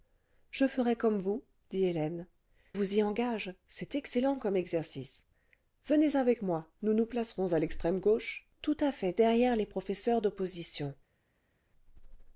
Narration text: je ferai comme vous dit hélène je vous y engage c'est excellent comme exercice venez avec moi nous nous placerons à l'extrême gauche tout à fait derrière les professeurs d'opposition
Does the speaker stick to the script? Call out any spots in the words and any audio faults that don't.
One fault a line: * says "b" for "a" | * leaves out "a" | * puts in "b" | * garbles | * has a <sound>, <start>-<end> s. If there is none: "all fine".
* leaves out "je"